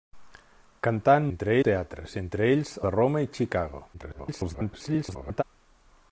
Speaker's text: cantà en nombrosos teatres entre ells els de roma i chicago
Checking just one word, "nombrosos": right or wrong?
wrong